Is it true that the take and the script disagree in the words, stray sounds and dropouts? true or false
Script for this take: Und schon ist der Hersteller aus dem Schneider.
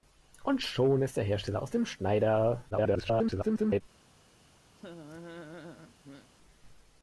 true